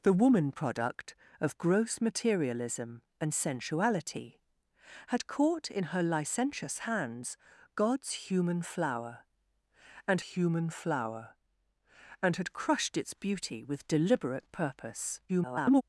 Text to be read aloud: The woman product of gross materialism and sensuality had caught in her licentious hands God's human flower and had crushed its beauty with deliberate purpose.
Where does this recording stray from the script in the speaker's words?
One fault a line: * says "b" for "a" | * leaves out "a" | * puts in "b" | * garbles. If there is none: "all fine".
* puts in "human flower and"
* garbles